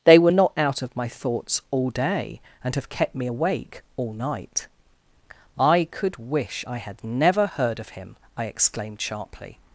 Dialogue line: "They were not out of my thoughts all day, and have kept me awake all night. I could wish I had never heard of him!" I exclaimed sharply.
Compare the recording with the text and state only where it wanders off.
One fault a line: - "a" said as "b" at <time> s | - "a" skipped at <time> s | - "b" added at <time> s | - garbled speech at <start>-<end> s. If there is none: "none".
none